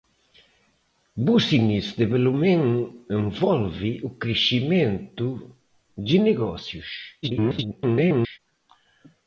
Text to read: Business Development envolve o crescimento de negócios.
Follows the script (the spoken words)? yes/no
no